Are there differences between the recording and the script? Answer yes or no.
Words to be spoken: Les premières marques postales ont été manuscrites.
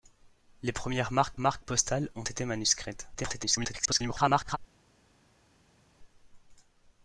yes